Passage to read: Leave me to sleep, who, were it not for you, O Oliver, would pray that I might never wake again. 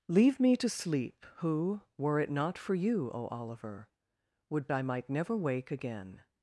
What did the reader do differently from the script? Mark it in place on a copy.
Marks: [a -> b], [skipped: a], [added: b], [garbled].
Leave me to sleep, who, were it not for you, O Oliver, would [skipped: pray that] I might never wake again.